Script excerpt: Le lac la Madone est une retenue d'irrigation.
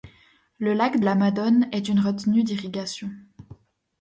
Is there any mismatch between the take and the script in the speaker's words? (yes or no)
no